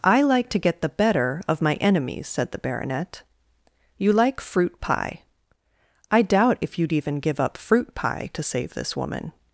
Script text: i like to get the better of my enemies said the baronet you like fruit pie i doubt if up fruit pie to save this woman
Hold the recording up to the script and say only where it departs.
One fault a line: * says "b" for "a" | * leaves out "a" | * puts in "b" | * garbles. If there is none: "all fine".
* puts in "you'd even give"